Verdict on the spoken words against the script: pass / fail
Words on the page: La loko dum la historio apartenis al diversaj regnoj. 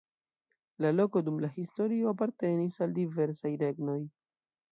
pass